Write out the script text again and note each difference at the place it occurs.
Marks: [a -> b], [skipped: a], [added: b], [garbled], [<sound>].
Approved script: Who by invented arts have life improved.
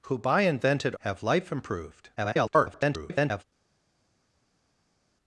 Who by invented [skipped: arts] have life improved. [garbled]